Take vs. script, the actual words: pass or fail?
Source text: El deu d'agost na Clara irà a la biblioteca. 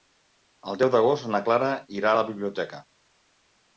pass